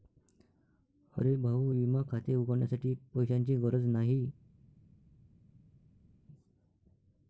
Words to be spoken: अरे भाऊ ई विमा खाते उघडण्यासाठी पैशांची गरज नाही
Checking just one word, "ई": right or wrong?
wrong